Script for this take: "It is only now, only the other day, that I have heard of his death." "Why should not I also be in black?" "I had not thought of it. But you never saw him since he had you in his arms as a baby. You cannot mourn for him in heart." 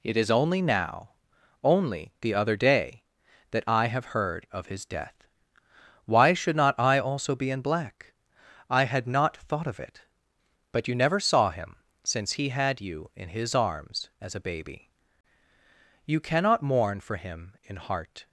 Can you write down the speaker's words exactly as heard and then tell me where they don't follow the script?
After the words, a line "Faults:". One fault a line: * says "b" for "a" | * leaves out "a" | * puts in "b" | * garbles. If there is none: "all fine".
"It is only now, only the other day, that I have heard of his death." "Why should not I also be in black?" "I had not thought of it. But you never saw him since he had you in his arms as a baby. You cannot mourn for him in heart."
Faults:
all fine